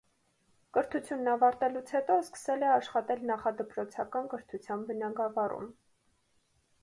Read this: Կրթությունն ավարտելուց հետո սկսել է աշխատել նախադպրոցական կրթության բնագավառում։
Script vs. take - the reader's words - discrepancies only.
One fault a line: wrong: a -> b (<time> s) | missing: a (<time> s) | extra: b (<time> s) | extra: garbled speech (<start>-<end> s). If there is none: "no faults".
no faults